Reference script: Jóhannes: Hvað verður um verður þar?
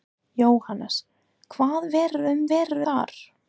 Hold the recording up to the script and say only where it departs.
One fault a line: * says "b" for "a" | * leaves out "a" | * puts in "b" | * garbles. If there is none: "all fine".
all fine